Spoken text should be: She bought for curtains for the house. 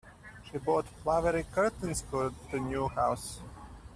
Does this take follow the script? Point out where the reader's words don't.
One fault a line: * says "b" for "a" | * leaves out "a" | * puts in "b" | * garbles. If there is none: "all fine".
* says "flowery" for "for"
* puts in "new"